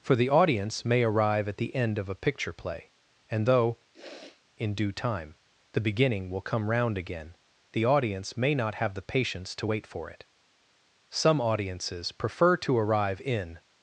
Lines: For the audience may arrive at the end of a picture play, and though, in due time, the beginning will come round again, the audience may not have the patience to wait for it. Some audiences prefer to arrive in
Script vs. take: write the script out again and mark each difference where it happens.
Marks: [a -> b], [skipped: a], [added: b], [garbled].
For the audience may arrive at the end of a picture play, and though, in due time, the beginning will come round again, the audience may not have the patience to wait for it. Some audiences prefer to arrive in